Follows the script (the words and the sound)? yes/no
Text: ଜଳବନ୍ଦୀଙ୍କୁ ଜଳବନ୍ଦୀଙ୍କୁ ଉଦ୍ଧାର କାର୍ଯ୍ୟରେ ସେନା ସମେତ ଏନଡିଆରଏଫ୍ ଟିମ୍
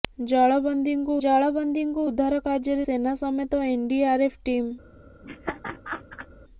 no